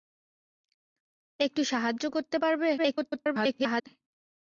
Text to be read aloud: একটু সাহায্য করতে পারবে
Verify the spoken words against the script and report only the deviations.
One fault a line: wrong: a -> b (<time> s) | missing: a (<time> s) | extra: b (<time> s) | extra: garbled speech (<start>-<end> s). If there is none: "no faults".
extra: garbled speech (2.8-3.9 s)